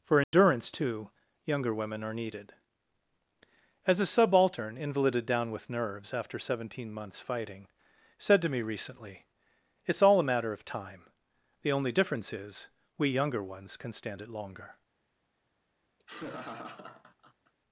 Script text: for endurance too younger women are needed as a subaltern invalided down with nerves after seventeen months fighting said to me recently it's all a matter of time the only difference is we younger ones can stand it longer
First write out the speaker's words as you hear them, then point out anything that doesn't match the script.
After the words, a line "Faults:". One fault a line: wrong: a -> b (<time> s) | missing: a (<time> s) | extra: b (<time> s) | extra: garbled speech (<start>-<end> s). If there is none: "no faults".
for endurance too younger women are needed as a subaltern invalided down with nerves after seventeen months fighting said to me recently it's all a matter of time the only difference is we younger ones can stand it longer
Faults:
no faults